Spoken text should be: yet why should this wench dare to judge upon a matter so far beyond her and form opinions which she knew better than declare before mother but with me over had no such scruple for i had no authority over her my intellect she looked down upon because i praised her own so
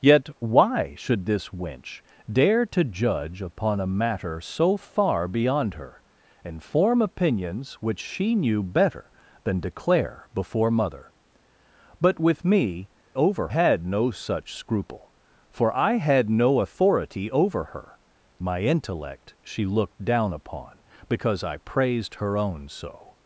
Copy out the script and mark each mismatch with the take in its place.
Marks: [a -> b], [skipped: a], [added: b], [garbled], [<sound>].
yet why should this wench dare to judge upon a matter so far beyond her and form opinions which she knew better than declare before mother but with me over had no such scruple for i had no authority over her my intellect she looked down upon because i praised her own so